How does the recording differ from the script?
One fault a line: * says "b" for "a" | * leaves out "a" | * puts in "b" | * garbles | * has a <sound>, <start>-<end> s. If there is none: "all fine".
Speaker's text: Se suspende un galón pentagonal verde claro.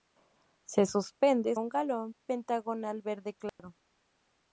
* has a dropout, 3.5-3.6 s